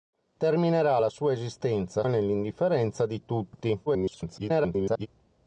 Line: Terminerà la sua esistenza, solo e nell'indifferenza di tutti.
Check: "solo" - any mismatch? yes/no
yes